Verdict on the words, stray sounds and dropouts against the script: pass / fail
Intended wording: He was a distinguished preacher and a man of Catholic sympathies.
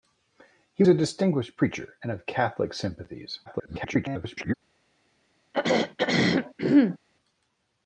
fail